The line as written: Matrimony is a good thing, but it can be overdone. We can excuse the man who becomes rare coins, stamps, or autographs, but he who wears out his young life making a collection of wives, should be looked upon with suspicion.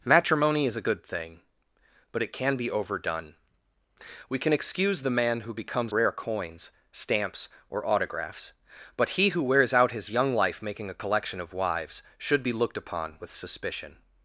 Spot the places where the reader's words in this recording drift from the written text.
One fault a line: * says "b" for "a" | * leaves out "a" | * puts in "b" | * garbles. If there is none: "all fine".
all fine